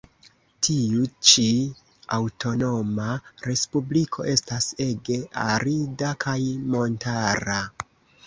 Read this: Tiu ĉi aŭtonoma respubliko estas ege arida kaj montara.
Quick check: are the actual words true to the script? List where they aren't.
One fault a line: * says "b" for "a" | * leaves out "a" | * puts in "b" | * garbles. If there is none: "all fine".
all fine